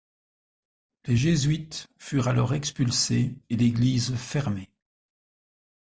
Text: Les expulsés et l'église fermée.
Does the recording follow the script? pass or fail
fail